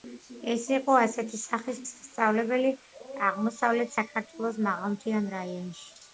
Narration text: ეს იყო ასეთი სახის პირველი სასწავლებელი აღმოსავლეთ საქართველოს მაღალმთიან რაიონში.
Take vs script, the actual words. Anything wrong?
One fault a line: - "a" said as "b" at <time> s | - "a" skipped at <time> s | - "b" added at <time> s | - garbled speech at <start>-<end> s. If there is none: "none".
- "პირველი" skipped at 1.8 s